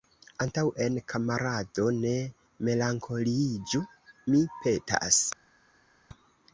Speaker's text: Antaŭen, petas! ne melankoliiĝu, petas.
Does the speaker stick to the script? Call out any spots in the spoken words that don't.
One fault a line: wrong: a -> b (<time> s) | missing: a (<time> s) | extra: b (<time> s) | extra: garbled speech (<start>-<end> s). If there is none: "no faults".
wrong: petas -> kamarado (1.1 s)
extra: mi (4.3 s)